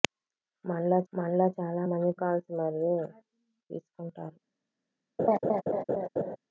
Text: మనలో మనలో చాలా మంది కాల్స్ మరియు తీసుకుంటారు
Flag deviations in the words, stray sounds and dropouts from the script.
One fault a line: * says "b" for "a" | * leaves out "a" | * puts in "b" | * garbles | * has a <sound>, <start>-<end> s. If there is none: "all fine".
* has a laugh, 5.2-6.4 s